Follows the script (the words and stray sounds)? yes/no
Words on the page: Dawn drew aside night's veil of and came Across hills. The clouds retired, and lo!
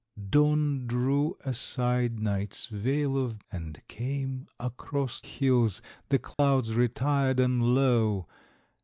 no